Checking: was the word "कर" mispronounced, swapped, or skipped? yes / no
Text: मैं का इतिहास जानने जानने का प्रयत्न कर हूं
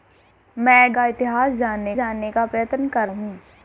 no